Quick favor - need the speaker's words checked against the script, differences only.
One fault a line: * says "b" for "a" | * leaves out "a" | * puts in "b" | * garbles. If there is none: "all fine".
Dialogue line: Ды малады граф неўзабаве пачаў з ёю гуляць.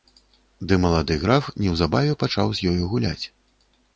all fine